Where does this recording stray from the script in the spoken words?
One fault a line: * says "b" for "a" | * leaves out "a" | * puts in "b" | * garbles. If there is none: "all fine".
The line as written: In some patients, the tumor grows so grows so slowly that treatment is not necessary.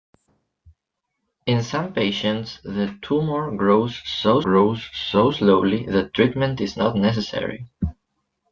all fine